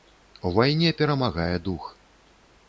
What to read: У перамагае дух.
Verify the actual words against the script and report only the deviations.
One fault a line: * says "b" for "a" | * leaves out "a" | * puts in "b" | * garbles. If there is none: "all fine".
* puts in "вайне"